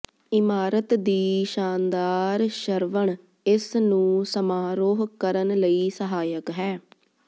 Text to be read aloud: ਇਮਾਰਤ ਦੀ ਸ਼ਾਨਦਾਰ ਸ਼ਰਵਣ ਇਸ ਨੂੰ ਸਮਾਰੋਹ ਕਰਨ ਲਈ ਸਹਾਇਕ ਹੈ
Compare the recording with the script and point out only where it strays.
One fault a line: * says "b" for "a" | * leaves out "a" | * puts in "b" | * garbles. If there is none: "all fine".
all fine